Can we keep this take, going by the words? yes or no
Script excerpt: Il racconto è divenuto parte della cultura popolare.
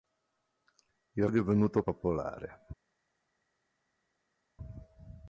no